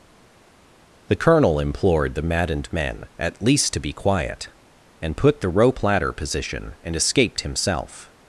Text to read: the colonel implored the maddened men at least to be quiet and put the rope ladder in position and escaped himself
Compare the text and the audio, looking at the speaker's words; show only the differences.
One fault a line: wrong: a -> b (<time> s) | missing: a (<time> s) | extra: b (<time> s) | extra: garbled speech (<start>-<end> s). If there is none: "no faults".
missing: in (6.1 s)